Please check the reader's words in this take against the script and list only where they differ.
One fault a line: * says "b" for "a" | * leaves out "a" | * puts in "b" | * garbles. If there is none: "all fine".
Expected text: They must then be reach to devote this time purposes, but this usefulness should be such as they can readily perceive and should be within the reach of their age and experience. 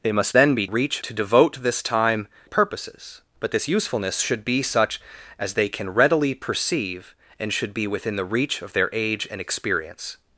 all fine